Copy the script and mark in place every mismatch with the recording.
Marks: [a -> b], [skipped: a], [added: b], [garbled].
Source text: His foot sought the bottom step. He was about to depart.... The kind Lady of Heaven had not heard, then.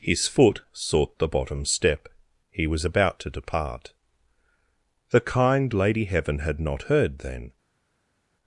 His foot sought the bottom step. He was about to depart.... The kind Lady [skipped: of] Heaven had not heard, then.